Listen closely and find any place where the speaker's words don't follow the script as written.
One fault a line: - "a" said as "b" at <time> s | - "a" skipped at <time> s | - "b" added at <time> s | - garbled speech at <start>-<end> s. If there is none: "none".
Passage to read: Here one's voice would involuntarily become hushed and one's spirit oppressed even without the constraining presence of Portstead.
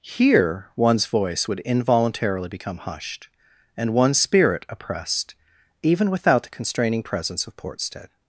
none